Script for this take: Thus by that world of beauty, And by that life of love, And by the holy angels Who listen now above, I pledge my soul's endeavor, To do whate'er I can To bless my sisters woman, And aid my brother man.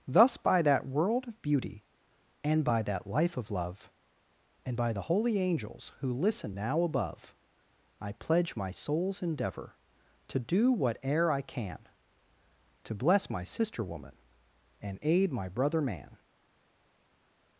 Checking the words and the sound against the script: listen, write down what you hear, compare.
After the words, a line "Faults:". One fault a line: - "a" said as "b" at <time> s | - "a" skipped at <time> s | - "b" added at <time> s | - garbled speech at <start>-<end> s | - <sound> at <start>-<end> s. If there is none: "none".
Thus by that world of beauty, And by that life of love, And by the holy angels Who listen now above, I pledge my soul's endeavor, To do whate'er I can To bless my sister woman, And aid my brother man.
Faults:
- "sisters" said as "sister" at 13.4 s